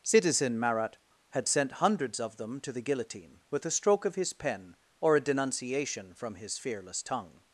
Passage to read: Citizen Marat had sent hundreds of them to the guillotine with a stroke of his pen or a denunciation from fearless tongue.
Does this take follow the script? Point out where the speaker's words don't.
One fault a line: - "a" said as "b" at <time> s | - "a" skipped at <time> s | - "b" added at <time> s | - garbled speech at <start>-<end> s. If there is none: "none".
- "his" added at 6.3 s